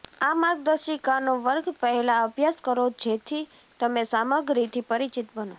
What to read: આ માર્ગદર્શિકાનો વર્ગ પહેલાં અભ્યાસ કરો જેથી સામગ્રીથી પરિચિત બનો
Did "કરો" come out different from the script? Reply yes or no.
no